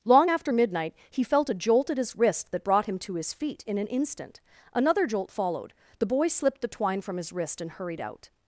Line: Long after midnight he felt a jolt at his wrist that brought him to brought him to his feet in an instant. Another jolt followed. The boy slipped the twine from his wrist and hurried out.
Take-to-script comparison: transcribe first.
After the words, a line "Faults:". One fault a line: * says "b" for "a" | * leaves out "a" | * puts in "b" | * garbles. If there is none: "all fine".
Long after midnight he felt a jolt at his wrist that brought him to his feet in an instant. Another jolt followed. The boy slipped the twine from his wrist and hurried out.
Faults:
* leaves out "brought him to"